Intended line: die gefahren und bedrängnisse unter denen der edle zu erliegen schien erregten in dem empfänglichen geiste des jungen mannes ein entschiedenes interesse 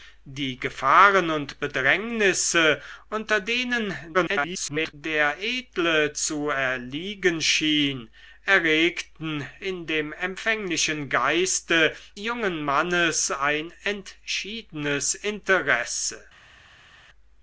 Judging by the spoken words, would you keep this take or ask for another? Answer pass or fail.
fail